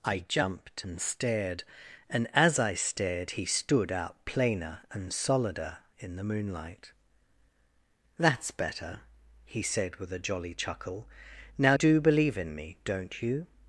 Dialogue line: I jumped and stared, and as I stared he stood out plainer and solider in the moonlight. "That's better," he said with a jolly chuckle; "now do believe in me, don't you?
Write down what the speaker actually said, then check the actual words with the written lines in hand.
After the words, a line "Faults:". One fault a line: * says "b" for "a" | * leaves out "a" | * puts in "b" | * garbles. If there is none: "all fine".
I jumped and stared, and as I stared he stood out plainer and solider in the moonlight. "That's better," he said with a jolly chuckle; "now do believe in me, don't you?
Faults:
all fine